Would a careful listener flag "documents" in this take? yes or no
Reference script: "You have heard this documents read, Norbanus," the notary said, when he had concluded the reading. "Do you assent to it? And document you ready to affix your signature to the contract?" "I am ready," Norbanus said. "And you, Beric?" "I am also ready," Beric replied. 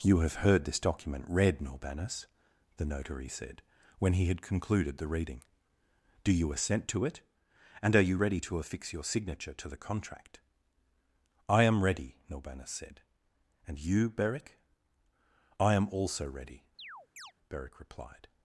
yes